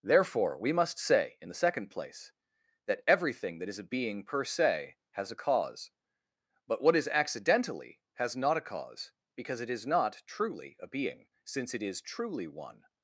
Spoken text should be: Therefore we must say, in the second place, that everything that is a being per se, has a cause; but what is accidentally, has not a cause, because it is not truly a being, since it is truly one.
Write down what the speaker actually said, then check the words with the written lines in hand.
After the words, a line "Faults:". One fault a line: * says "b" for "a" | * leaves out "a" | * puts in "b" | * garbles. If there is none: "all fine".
Therefore we must say, in the second place, that everything that is a being per se, has a cause; but what is accidentally, has not a cause, because it is not truly a being, since it is truly one.
Faults:
all fine